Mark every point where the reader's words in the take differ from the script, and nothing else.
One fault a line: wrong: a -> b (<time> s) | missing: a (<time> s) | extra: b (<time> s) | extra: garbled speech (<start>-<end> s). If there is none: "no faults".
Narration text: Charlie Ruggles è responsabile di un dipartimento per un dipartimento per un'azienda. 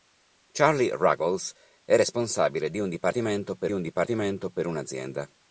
no faults